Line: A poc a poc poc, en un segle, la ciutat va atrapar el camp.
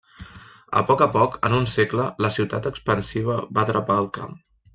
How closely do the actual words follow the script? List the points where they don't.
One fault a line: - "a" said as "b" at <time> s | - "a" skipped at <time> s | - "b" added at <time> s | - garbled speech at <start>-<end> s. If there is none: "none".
- "poc" skipped at 1.4 s
- "expansiva" added at 2.7 s